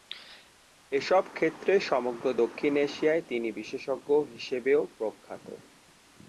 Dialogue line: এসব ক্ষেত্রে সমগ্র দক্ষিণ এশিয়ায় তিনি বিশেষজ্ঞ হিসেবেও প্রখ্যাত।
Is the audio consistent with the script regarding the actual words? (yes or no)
yes